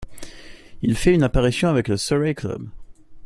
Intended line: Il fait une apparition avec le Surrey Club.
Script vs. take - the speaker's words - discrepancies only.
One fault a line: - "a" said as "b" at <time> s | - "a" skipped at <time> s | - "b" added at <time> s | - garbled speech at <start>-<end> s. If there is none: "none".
none